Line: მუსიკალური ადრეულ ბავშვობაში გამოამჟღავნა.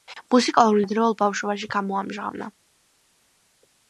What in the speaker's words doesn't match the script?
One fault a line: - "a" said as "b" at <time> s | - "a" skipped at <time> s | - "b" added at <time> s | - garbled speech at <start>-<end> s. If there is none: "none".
none